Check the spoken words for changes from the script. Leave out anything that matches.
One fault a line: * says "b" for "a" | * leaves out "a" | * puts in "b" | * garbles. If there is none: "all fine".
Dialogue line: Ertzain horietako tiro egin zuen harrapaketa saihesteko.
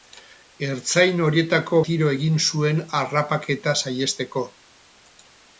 all fine